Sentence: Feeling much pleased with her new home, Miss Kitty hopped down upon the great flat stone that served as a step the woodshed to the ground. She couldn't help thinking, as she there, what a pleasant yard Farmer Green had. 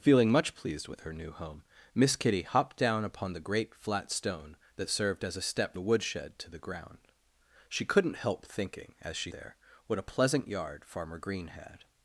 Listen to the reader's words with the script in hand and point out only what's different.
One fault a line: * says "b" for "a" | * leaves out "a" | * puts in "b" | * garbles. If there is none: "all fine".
all fine